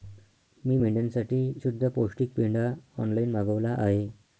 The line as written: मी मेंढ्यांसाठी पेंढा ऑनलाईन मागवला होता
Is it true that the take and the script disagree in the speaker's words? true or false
true